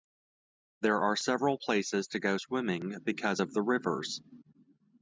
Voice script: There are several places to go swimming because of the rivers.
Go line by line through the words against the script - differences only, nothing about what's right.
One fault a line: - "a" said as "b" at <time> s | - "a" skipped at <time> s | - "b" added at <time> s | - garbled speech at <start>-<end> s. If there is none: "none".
none